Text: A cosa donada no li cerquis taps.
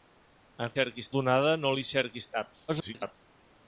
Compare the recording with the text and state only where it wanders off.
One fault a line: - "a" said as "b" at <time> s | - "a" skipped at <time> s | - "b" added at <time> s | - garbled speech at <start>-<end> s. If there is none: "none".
- "cosa" said as "cerquis" at 0.7 s
- garbled speech at 2.7-3.1 s